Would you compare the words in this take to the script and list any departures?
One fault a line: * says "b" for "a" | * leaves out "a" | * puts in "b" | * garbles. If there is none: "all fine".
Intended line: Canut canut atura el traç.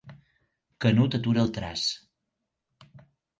* leaves out "canut"